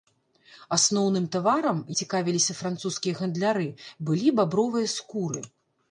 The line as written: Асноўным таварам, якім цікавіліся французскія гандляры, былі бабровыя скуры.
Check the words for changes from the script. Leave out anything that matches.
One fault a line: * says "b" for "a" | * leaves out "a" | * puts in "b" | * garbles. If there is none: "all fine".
* leaves out "якім"